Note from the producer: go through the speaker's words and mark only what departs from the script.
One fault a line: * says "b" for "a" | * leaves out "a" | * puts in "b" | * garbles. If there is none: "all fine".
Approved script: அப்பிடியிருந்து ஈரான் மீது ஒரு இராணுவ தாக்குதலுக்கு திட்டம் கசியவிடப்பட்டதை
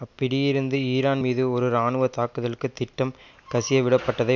all fine